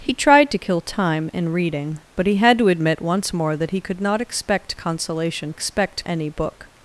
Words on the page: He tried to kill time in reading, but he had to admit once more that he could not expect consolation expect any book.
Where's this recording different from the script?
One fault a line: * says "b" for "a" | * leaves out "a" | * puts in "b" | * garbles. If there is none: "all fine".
all fine